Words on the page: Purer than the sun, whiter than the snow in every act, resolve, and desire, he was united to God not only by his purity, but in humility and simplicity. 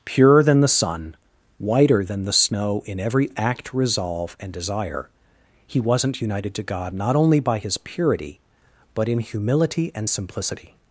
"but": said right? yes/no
yes